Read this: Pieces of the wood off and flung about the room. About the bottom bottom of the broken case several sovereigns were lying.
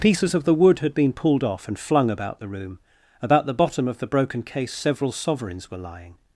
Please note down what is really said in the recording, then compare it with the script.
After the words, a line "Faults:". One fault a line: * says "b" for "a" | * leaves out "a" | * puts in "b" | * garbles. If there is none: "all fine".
Pieces of the wood had been pulled off and flung about the room. About the bottom of the broken case several sovereigns were lying.
Faults:
* puts in "had been pulled"
* leaves out "bottom"